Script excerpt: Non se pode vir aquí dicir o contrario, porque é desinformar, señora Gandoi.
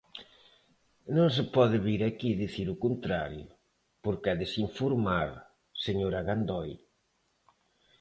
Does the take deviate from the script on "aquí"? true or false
false